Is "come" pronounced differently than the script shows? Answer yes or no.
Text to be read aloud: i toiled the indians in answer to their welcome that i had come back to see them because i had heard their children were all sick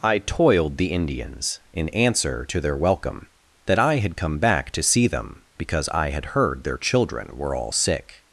no